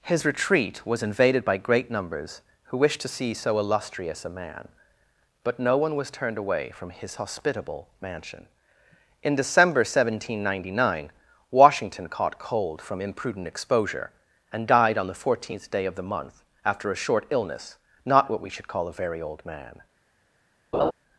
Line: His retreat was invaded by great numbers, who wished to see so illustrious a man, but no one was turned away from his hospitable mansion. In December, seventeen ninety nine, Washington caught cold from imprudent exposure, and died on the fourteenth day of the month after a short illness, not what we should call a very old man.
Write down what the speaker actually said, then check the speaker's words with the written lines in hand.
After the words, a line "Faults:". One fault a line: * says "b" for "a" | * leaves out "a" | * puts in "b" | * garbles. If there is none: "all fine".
His retreat was invaded by great numbers, who wished to see so illustrious a man, but no one was turned away from his hospitable mansion. In December, seventeen ninety nine, Washington caught cold from imprudent exposure, and died on the fourteenth day of the month after a short illness, not what we should call a very old man.
Faults:
all fine